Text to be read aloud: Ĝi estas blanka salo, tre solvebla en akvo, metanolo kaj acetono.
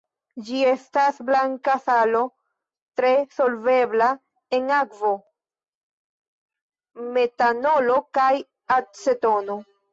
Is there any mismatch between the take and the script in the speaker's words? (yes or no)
no